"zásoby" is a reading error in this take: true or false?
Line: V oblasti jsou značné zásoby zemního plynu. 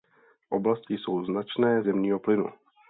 true